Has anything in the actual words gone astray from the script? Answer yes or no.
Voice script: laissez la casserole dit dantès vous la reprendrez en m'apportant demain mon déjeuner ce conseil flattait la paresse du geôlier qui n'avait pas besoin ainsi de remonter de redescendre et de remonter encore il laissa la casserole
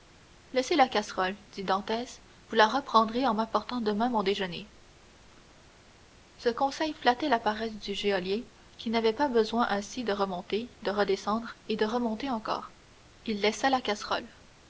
no